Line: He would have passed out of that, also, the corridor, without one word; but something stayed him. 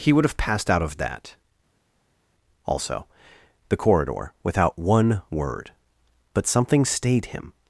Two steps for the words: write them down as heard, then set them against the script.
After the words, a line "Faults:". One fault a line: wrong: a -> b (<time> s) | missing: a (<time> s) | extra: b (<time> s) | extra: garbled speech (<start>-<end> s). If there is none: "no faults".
He would have passed out of that, also, the corridor, without one word; but something stayed him.
Faults:
no faults